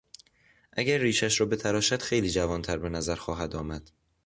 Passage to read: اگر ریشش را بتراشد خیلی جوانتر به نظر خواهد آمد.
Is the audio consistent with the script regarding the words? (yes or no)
yes